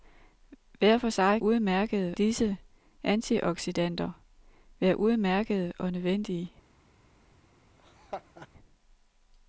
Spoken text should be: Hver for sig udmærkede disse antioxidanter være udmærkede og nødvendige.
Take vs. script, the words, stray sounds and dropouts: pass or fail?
fail